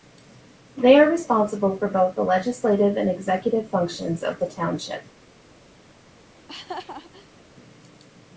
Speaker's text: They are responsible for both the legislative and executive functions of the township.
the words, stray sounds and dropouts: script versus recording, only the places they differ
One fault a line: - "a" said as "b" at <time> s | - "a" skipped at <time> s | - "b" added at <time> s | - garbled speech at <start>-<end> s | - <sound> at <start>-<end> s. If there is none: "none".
- laugh at 6.3-7.4 s